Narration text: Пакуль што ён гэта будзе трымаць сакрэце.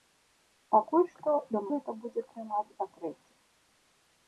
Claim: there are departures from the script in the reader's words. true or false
false